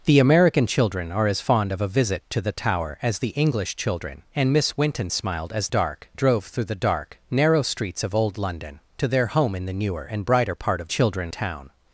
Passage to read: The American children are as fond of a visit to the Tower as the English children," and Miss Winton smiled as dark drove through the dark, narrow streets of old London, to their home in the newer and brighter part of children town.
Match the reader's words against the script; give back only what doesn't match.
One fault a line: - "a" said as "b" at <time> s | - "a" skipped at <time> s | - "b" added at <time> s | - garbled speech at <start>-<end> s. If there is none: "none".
none